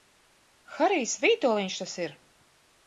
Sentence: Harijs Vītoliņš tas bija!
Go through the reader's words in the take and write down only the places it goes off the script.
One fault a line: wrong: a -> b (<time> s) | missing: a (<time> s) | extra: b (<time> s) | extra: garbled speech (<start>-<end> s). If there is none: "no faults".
wrong: bija -> ir (2.1 s)